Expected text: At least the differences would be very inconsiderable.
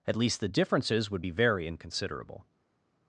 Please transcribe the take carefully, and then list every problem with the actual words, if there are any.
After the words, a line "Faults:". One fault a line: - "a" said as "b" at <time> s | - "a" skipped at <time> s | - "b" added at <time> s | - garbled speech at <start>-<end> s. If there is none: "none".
At least the differences would be very inconsiderable.
Faults:
none